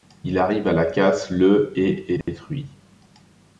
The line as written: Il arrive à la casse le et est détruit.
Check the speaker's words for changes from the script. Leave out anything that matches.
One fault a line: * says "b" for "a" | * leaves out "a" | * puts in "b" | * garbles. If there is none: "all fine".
all fine